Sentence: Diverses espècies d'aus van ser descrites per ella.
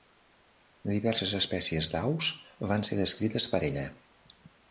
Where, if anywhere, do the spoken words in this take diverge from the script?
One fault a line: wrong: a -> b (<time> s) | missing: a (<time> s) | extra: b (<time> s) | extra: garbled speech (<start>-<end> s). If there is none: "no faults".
no faults